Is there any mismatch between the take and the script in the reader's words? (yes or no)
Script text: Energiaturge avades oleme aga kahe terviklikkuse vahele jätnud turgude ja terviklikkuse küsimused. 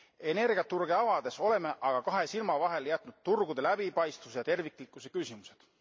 yes